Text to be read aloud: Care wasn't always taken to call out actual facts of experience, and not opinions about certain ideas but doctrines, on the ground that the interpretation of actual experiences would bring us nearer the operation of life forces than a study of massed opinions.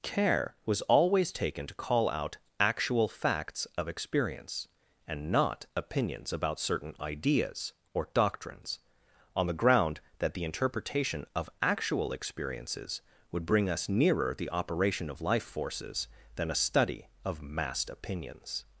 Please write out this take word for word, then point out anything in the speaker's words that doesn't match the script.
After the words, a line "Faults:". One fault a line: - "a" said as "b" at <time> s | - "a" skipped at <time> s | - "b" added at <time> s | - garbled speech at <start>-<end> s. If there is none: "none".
Care was always taken to call out actual facts of experience, and not opinions about certain ideas or doctrines, on the ground that the interpretation of actual experiences would bring us nearer the operation of life forces than a study of massed opinions.
Faults:
- "wasn't" said as "was" at 0.7 s
- "but" said as "or" at 7.9 s